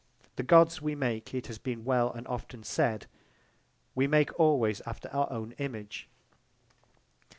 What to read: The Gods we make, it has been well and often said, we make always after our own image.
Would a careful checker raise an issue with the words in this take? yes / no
no